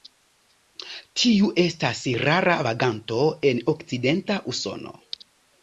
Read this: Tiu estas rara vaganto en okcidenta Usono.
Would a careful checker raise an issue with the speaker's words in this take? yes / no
no